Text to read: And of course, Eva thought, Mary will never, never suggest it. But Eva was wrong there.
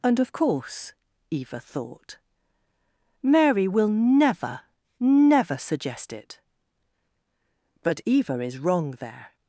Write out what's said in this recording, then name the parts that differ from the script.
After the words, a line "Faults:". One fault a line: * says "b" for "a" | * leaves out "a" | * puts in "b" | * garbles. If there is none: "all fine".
And of course, Eva thought, Mary will never, never suggest it. But Eva is wrong there.
Faults:
* says "is" for "was"